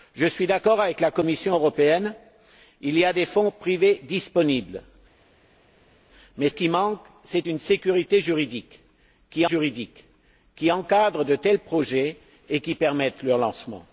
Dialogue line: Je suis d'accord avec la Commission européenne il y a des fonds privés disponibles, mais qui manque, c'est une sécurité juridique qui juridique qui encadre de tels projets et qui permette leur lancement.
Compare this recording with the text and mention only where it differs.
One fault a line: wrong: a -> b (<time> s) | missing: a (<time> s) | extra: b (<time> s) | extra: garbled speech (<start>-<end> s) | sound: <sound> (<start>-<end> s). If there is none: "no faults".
no faults